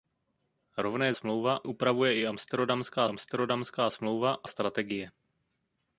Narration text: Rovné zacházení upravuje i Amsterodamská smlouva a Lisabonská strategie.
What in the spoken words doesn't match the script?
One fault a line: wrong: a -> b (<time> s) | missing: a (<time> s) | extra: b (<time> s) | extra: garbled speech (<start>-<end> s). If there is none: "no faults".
wrong: zacházení -> smlouva (1.1 s)
extra: Amsterodamská (3.1 s)
missing: Lisabonská (4.5 s)